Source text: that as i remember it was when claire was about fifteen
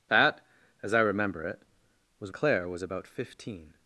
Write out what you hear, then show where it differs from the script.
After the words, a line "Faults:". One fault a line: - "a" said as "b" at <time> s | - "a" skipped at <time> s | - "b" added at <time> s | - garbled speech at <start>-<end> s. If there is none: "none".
that as i remember it was claire was about fifteen
Faults:
- "when" skipped at 2.3 s